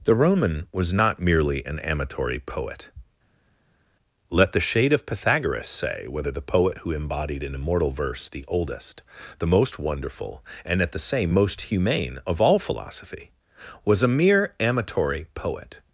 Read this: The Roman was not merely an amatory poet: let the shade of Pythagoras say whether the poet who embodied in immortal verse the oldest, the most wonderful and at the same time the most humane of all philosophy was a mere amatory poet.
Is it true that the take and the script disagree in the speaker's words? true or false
true